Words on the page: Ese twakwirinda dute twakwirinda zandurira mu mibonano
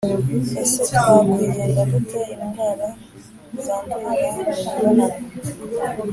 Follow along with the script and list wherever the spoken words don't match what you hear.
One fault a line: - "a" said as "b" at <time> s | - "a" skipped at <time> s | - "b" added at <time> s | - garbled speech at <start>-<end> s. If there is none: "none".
- "twakwirinda" said as "indwara" at 2.3 s